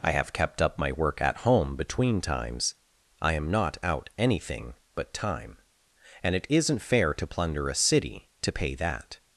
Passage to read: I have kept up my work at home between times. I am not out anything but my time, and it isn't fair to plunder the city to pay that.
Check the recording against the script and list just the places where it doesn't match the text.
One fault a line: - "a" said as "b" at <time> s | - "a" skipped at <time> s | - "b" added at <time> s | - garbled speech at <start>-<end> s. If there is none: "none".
- "my" skipped at 5.1 s
- "the" said as "a" at 7.7 s